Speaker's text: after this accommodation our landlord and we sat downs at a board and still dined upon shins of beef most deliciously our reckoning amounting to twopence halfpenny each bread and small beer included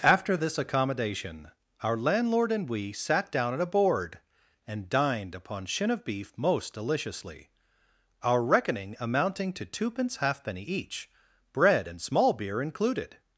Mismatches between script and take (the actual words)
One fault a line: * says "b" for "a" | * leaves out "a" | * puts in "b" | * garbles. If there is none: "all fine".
* says "down" for "downs"
* leaves out "still"
* says "shin" for "shins"